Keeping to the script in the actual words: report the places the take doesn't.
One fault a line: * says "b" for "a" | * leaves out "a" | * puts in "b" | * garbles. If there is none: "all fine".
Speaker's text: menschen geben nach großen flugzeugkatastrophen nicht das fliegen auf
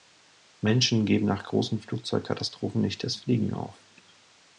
all fine